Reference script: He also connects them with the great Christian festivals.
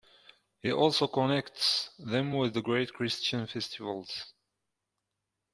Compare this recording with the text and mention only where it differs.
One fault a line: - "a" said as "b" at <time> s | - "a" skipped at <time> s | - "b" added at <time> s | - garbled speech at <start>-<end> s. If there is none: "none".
none